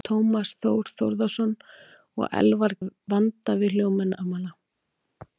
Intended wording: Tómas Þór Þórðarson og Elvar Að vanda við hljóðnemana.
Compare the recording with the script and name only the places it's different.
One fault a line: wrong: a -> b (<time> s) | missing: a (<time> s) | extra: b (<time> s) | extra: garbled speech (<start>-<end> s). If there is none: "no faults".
no faults